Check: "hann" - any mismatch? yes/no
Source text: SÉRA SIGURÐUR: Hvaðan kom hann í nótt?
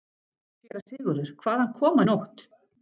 yes